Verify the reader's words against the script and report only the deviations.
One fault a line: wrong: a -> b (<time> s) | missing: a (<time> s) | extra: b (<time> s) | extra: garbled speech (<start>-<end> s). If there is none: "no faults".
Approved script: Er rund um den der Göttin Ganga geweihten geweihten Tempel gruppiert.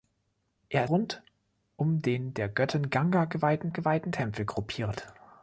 no faults